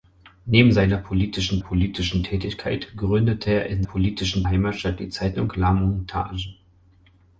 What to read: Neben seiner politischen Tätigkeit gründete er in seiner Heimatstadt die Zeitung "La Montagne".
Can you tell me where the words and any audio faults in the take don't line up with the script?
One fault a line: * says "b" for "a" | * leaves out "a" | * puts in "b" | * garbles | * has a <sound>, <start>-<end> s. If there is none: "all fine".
* puts in "politischen"
* says "politischen" for "seiner"